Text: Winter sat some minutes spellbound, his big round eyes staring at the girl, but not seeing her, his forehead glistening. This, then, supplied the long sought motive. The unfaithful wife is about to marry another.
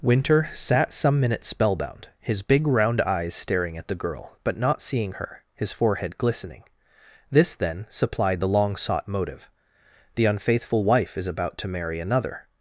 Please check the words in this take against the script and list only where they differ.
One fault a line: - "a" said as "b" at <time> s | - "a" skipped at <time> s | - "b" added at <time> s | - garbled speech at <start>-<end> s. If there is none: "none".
none